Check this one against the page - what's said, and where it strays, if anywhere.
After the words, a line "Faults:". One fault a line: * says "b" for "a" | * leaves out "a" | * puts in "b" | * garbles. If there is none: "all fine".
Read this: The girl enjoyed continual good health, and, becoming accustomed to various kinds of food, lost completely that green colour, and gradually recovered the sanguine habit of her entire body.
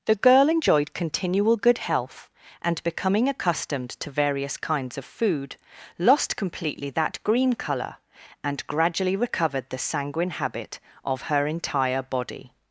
The girl enjoyed continual good health, and, becoming accustomed to various kinds of food, lost completely that green colour, and gradually recovered the sanguine habit of her entire body.
Faults:
all fine